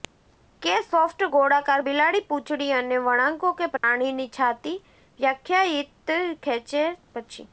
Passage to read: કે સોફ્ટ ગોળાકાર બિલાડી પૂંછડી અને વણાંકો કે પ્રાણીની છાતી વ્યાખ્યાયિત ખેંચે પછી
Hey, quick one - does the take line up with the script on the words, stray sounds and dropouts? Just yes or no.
no